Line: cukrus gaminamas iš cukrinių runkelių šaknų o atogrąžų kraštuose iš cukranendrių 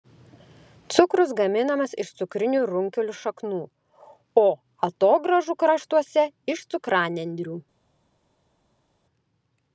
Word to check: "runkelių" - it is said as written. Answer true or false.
true